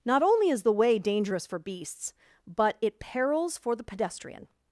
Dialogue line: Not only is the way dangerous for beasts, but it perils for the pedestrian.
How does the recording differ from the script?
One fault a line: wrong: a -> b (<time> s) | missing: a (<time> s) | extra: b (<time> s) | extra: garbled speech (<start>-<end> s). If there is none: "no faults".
no faults